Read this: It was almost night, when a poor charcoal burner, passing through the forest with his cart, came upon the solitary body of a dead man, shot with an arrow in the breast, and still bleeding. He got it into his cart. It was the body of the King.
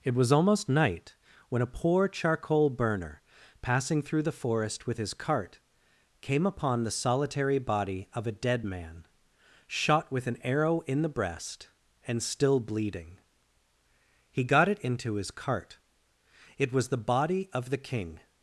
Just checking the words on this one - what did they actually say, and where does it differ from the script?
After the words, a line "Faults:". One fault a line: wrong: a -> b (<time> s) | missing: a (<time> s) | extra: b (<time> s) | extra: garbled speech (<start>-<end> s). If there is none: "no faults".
It was almost night, when a poor charcoal burner, passing through the forest with his cart, came upon the solitary body of a dead man, shot with an arrow in the breast, and still bleeding. He got it into his cart. It was the body of the King.
Faults:
no faults